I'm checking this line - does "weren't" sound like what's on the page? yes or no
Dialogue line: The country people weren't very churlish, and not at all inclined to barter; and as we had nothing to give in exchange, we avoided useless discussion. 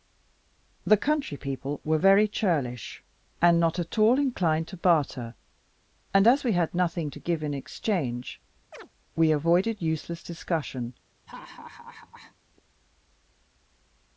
no